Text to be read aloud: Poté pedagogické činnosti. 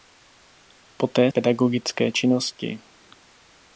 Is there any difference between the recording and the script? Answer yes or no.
no